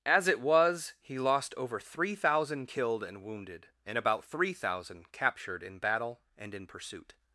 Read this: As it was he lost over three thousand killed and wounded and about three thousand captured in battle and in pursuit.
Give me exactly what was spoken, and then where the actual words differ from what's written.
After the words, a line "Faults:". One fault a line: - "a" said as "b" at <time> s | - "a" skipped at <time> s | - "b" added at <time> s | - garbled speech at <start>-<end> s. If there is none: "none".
As it was he lost over three thousand killed and wounded and about three thousand captured in battle and in pursuit.
Faults:
none